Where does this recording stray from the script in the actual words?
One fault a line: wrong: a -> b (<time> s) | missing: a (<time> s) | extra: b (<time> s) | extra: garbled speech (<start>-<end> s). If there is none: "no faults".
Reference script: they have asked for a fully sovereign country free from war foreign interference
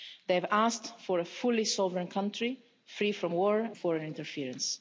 no faults